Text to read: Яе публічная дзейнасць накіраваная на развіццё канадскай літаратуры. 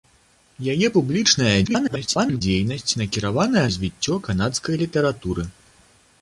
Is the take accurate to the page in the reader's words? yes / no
no